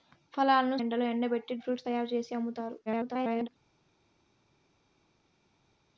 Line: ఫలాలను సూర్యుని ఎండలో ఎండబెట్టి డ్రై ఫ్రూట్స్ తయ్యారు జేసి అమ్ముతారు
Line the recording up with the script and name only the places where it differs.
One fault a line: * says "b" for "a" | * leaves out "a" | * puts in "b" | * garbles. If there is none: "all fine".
* leaves out "సూర్యుని"
* leaves out "డ్రై"
* garbles